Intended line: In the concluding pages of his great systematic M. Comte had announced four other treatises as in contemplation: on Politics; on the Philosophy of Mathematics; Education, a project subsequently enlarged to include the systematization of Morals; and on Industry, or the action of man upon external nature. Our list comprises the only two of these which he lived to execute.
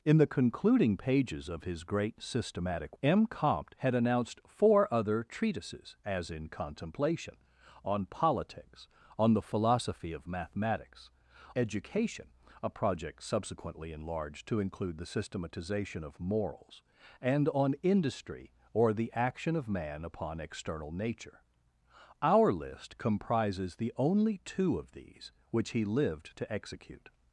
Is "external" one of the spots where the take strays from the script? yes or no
no